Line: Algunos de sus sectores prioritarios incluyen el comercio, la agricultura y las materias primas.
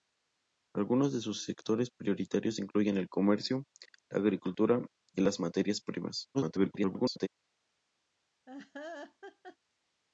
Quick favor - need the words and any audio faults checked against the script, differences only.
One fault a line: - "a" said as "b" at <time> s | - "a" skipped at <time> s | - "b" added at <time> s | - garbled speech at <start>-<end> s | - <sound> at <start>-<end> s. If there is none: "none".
- garbled speech at 6.3-7.3 s
- laugh at 8.5-9.6 s